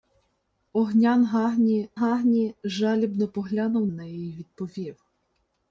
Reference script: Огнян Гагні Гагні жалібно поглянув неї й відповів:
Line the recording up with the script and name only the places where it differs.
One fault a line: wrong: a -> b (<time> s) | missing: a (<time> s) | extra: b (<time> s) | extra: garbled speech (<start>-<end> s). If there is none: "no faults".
no faults